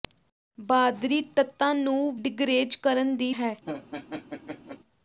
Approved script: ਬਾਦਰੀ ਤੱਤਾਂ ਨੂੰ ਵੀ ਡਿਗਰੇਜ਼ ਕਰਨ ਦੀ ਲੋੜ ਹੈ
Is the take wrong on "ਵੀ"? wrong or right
wrong